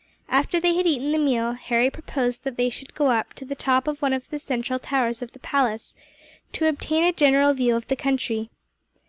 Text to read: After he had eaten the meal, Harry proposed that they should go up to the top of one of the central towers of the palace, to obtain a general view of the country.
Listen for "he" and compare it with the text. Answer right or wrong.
wrong